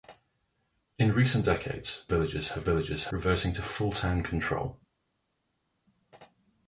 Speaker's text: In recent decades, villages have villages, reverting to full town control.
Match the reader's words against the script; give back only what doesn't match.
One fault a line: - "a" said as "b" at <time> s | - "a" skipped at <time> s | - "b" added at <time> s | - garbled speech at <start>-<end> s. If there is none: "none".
none